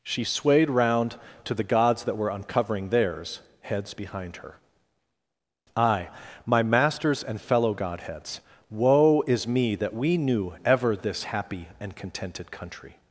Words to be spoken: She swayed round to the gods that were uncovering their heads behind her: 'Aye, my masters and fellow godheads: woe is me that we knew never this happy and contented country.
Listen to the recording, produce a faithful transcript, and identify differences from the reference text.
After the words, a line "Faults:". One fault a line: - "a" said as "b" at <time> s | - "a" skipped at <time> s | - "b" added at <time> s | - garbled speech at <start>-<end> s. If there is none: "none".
She swayed round to the gods that were uncovering theirs heads behind her: 'Aye, my masters and fellow godheads: woe is me that we knew ever this happy and contented country.
Faults:
- "their" said as "theirs" at 2.9 s
- "never" said as "ever" at 10.6 s